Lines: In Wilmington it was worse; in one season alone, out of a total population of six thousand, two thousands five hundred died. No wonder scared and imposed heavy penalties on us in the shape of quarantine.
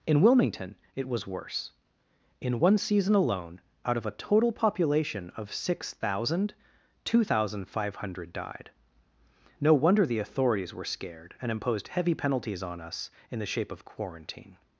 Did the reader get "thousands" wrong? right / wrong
wrong